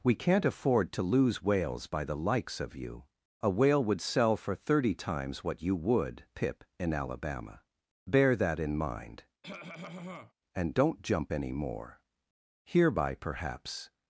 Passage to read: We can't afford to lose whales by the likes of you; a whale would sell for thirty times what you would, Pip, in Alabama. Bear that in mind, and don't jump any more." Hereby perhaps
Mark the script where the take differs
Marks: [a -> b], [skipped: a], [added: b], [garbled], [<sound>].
We can't afford to lose whales by the likes of you; a whale would sell for thirty times what you would, Pip, in Alabama. Bear that in mind, [cough] and don't jump any more." Hereby perhaps